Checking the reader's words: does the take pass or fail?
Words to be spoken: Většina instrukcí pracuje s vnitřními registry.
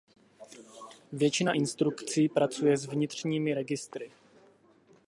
pass